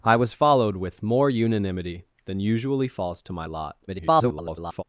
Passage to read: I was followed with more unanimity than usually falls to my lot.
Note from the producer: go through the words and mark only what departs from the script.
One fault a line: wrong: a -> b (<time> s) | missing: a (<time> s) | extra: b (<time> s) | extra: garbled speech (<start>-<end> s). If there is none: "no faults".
extra: garbled speech (3.9-4.8 s)